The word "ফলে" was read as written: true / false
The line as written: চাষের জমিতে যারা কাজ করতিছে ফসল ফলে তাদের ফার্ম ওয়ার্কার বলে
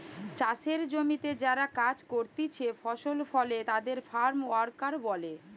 true